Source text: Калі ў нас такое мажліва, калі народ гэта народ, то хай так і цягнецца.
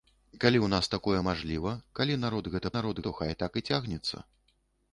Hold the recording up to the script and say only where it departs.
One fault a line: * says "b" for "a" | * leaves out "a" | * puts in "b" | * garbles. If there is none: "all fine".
all fine